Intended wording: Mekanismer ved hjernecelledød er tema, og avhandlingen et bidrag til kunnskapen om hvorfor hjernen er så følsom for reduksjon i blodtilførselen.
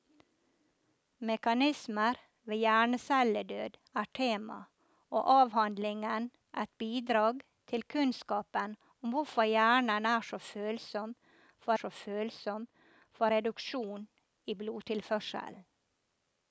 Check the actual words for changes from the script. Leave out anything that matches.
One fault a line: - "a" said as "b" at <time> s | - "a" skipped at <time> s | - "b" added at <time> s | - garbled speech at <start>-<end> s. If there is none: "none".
- "så følsom for" added at 11.7 s